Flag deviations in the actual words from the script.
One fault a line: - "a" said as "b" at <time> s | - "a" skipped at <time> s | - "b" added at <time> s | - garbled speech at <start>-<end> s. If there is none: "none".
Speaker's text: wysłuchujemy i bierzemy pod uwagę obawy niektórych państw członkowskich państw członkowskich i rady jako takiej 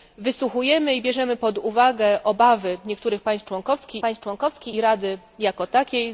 none